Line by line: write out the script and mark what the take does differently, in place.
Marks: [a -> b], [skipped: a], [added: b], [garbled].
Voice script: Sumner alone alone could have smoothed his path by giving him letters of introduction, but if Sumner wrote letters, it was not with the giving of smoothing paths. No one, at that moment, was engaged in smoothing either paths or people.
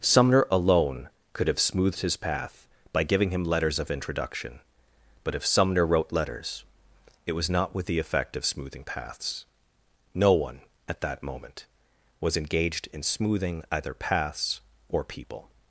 Sumner alone [skipped: alone] could have smoothed his path by giving him letters of introduction, but if Sumner wrote letters, it was not with the [giving -> effect] of smoothing paths. No one, at that moment, was engaged in smoothing either paths or people.